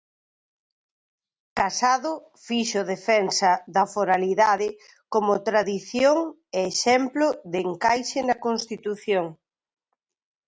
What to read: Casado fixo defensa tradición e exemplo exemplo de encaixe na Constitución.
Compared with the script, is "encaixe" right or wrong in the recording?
right